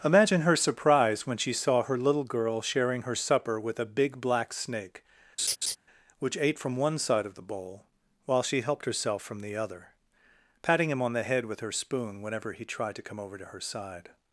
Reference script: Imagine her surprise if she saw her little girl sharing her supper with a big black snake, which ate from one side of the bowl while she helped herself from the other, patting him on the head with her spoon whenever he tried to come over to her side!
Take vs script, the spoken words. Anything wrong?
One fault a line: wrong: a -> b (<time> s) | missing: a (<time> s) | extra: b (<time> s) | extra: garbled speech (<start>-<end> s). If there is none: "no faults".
wrong: if -> when (1.3 s)